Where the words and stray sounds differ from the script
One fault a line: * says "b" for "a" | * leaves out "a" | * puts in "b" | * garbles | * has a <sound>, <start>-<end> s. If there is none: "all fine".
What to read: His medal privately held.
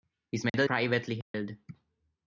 * has a dropout, 0.5-0.5 s
* has a dropout, 1.2-1.3 s